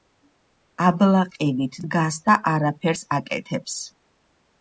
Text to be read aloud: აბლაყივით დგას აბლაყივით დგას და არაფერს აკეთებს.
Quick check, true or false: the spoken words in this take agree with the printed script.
false